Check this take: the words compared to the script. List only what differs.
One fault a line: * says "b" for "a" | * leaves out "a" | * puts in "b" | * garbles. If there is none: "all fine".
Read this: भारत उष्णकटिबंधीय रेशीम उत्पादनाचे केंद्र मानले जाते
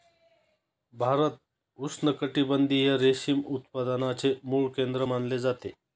* puts in "मूळ"